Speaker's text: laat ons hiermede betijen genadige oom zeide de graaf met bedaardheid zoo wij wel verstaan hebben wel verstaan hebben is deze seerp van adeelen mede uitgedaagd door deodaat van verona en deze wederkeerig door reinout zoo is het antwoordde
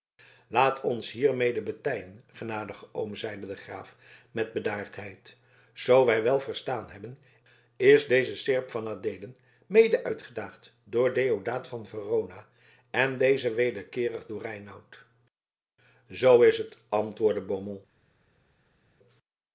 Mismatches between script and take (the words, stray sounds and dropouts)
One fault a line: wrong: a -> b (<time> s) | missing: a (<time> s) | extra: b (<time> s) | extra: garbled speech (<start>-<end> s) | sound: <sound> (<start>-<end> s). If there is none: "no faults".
missing: wel verstaan hebben (7.2 s)